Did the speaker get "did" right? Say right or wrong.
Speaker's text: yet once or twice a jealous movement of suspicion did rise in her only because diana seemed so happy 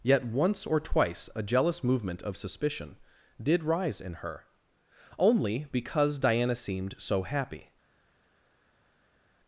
right